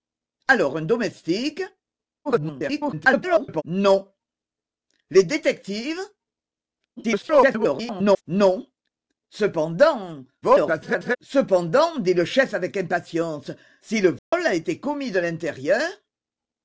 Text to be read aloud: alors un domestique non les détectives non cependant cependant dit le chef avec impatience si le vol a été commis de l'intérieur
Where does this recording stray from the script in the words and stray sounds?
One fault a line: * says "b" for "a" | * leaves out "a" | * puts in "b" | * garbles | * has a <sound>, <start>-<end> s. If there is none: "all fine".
* garbles
* garbles
* garbles
* has a dropout, 14.2-14.3 s